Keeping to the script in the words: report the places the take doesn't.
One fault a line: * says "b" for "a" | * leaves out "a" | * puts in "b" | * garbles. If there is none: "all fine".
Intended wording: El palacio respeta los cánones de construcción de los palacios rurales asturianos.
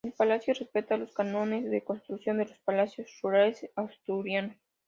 all fine